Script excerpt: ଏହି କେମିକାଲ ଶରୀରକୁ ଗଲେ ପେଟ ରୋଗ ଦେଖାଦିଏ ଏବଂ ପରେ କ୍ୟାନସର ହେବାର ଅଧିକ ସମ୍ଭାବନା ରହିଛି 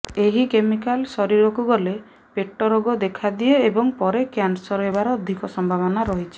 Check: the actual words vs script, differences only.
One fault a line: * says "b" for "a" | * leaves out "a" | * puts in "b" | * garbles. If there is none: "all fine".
all fine